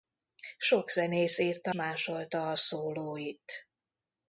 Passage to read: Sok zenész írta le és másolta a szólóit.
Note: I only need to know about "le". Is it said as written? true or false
false